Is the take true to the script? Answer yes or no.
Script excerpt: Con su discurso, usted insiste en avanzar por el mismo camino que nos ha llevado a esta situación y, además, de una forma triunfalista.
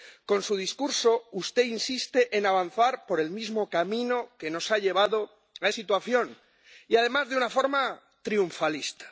no